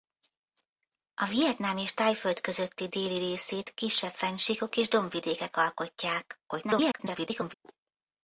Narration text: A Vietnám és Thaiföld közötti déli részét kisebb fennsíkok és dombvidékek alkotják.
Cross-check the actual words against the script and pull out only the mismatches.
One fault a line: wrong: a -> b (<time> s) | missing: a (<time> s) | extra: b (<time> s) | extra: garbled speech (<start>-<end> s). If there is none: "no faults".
extra: garbled speech (6.5-7.5 s)